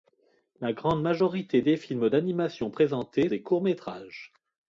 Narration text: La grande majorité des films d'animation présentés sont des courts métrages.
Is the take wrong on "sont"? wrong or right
wrong